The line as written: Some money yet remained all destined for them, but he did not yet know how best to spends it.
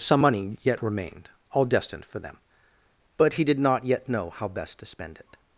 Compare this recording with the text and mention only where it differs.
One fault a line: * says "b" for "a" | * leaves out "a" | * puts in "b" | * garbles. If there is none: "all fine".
* says "spend" for "spends"